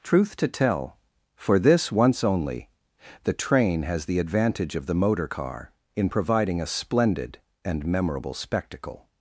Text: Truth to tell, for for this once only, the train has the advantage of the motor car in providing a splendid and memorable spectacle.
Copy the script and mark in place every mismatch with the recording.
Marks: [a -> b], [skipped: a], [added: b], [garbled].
Truth to tell, for [skipped: for] this once only, the train has the advantage of the motor car in providing a splendid and memorable spectacle.